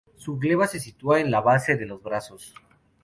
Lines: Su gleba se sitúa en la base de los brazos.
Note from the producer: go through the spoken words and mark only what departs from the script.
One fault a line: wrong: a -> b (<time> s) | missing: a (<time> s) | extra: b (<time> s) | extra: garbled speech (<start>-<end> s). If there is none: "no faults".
no faults